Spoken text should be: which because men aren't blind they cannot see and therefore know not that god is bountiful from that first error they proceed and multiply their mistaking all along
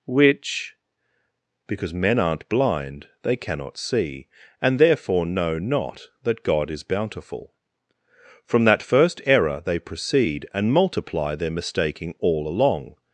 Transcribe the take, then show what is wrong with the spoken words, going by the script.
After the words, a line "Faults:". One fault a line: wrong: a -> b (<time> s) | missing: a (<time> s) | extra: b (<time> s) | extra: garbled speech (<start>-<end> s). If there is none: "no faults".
which because men aren't blind they cannot see and therefore know not that god is bountiful from that first error they proceed and multiply their mistaking all along
Faults:
no faults